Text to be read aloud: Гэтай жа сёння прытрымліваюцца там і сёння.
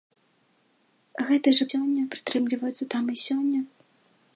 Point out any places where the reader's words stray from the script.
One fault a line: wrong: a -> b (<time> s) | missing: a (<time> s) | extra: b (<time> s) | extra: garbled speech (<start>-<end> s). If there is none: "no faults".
no faults